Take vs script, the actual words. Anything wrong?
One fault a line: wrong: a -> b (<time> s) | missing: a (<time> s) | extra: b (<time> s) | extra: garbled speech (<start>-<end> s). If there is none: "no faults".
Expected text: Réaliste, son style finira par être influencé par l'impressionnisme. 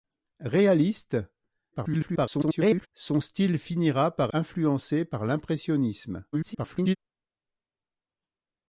extra: garbled speech (1.7-2.9 s)
missing: être (4.3 s)
extra: garbled speech (6.3-7.0 s)